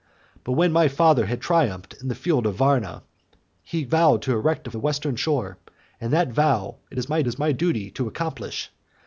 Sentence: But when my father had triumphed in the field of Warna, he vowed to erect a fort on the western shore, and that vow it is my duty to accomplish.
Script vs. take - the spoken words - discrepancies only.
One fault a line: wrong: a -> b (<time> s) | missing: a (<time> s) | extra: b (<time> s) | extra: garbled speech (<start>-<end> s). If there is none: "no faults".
missing: fort on (4.7 s)
extra: is my (7.3 s)